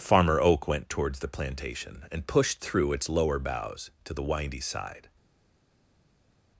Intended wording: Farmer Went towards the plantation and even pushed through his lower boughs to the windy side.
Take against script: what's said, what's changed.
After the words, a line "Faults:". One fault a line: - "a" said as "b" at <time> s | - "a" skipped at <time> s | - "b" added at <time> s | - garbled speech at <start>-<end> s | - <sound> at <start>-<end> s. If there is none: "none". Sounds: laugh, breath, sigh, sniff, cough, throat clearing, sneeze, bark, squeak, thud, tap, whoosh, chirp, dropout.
Farmer Oak went towards the plantation and pushed through its lower boughs to the windy side.
Faults:
- "Oak" added at 0.4 s
- "even" skipped at 2.2 s
- "his" said as "its" at 2.9 s